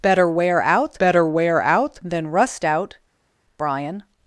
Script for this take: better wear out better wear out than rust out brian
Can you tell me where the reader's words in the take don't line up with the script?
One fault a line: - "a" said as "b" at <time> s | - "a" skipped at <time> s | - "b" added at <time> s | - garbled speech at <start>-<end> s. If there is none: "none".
none